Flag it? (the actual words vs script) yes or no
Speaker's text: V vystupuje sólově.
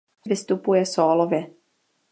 no